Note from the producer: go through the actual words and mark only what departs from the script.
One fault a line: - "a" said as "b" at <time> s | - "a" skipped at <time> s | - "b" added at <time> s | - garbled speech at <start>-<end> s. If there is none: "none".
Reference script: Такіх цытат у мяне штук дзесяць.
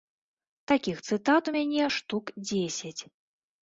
none